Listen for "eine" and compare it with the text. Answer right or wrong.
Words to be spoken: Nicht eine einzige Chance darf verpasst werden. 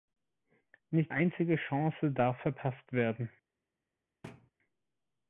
wrong